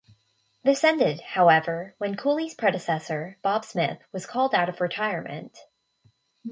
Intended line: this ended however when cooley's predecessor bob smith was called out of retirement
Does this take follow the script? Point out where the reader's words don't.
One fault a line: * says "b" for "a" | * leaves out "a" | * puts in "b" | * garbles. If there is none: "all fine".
all fine